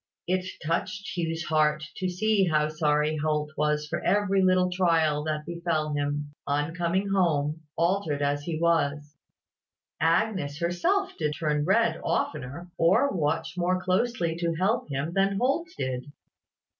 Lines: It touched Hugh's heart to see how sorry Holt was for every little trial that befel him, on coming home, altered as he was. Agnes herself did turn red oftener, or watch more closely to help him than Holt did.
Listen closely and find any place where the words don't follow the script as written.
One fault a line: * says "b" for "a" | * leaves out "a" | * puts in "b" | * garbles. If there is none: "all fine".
all fine